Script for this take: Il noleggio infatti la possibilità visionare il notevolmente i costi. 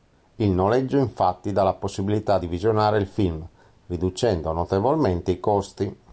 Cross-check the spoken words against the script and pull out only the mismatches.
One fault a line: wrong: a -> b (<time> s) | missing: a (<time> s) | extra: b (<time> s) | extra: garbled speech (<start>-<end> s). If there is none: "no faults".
extra: dà (1.5 s)
extra: di (2.4 s)
extra: film riducendo (3.1 s)